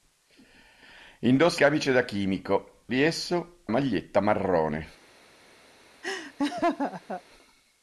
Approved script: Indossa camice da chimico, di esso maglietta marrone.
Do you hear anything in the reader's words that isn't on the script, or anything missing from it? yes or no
no